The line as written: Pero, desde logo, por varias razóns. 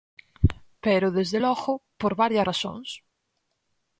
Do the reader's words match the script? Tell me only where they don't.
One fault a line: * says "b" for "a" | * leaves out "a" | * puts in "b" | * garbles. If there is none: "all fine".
all fine